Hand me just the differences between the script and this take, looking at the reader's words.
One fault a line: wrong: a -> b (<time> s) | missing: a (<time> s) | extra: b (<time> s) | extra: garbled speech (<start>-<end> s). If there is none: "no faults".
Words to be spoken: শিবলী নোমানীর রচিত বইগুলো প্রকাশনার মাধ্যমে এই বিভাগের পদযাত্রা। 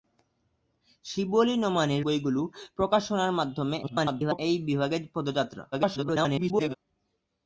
missing: রচিত (2.0 s)
extra: garbled speech (3.8-4.4 s)
extra: garbled speech (5.7-6.7 s)